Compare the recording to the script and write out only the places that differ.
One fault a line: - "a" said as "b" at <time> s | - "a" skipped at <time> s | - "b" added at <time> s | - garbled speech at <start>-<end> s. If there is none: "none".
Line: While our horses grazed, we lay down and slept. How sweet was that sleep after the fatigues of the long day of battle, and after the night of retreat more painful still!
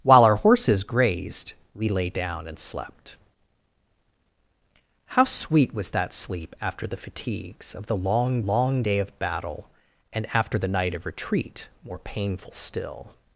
- "long" added at 8.4 s